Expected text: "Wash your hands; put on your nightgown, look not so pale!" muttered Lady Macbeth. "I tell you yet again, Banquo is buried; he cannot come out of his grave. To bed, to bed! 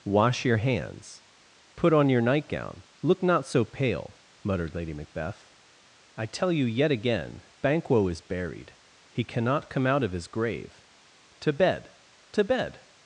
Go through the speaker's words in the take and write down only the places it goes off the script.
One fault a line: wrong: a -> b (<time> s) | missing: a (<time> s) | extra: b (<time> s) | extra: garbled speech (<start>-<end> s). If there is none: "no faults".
no faults